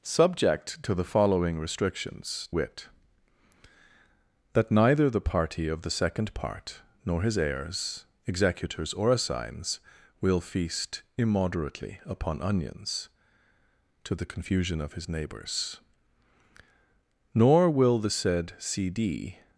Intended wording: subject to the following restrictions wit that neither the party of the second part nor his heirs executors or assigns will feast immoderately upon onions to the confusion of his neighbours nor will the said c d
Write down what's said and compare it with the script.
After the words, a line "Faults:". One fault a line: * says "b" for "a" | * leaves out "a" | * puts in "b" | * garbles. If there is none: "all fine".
subject to the following restrictions wit that neither the party of the second part nor his heirs executors or assigns will feast immoderately upon onions to the confusion of his neighbours nor will the said c d
Faults:
all fine